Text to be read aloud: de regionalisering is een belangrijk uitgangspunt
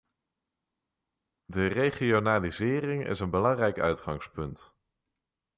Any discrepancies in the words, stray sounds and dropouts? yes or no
no